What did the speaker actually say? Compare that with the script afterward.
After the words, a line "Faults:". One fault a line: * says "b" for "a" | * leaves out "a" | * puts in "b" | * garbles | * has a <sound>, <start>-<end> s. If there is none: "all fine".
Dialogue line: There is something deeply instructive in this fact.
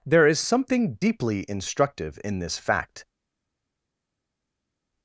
There is something deeply instructive in this fact.
Faults:
all fine